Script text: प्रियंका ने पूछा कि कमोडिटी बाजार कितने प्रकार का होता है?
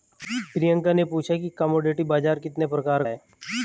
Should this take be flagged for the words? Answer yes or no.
yes